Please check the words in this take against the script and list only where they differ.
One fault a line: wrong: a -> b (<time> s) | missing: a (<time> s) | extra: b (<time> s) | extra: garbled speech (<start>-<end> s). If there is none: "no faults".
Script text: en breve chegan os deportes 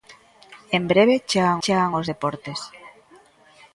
extra: chegan (1.6 s)